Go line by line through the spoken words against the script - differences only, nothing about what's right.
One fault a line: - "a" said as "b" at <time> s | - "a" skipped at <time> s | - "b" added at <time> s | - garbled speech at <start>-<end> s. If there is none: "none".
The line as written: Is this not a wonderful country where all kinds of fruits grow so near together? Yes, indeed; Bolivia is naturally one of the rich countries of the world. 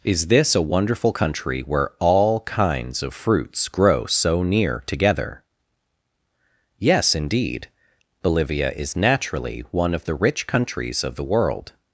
- "not" skipped at 0.6 s